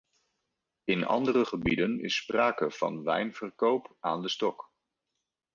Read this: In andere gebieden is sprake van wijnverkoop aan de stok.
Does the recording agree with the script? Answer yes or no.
yes